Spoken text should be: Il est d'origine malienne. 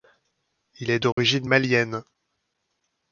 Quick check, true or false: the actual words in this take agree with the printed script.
true